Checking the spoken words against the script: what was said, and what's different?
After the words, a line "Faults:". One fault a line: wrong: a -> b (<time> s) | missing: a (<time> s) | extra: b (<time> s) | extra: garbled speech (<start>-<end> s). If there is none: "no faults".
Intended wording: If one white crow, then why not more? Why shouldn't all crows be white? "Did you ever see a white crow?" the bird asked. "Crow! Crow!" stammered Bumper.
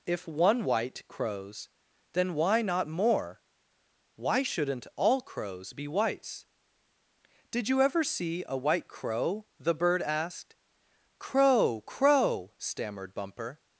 If one white crows, then why not more? Why shouldn't all crows be whites? "Did you ever see a white crow?" the bird asked. "Crow! Crow!" stammered Bumper.
Faults:
wrong: crow -> crows (1.1 s)
wrong: white -> whites (5.9 s)